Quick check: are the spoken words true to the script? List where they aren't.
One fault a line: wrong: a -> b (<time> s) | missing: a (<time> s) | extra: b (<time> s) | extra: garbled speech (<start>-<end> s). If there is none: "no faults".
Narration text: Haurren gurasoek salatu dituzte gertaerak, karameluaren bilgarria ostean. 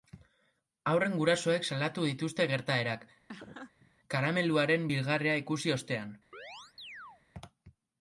extra: ikusi (5.4 s)